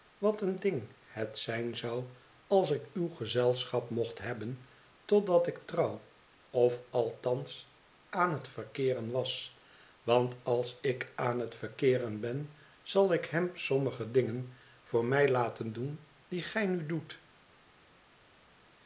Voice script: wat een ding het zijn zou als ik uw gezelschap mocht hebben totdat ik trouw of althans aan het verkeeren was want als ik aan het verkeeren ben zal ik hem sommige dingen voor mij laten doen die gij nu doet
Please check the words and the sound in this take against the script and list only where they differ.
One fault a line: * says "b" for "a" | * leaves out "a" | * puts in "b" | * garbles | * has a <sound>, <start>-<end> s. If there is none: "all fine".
all fine